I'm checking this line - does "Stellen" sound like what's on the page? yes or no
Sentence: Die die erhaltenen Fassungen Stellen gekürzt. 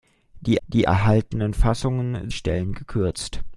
yes